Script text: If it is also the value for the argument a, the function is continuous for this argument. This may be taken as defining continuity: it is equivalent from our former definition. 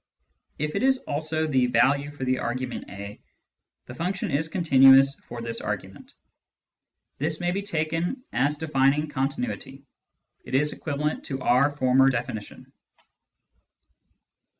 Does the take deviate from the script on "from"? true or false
true